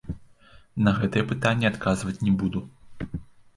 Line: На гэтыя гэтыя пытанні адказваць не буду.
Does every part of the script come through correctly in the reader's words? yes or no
no